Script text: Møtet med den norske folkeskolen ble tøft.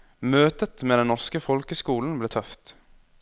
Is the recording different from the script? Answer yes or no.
no